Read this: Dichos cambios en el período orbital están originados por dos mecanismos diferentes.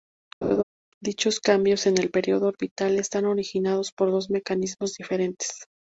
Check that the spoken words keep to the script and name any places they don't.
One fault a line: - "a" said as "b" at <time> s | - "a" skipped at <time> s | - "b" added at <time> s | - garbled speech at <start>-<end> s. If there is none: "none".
none